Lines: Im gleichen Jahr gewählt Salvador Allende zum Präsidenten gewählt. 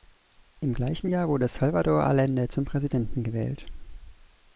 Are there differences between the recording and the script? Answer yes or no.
yes